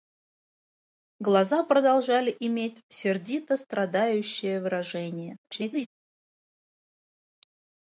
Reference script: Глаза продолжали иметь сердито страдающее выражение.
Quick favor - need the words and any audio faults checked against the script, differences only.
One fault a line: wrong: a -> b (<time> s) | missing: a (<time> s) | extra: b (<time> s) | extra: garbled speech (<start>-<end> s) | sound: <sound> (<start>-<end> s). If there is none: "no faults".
extra: garbled speech (5.4-5.9 s)